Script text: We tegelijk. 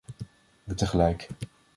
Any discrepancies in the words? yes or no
no